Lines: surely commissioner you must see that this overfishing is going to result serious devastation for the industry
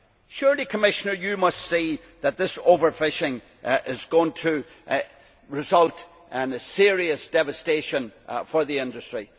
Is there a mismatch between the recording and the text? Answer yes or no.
yes